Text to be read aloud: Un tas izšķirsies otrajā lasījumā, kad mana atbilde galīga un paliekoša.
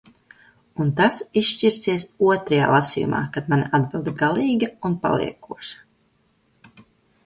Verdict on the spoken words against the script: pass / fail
pass